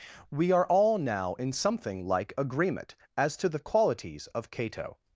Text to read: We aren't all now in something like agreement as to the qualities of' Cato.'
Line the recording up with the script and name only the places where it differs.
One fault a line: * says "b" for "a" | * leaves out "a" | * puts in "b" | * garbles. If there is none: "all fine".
* says "are" for "aren't"